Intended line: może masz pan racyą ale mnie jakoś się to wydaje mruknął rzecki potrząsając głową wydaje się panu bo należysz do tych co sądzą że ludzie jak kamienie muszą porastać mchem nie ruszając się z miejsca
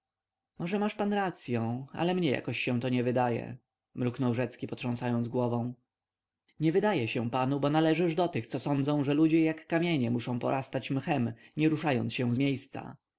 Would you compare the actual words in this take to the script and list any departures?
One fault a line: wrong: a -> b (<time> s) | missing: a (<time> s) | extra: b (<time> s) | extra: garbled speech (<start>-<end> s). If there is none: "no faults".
extra: nie (2.9 s)
extra: nie (6.6 s)